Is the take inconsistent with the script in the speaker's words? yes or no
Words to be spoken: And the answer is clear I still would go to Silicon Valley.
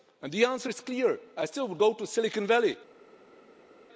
no